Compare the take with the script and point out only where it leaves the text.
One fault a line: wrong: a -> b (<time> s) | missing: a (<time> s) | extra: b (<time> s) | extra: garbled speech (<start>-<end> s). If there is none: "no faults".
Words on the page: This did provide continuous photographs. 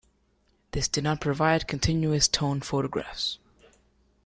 extra: not (1.0 s)
extra: tone (2.3 s)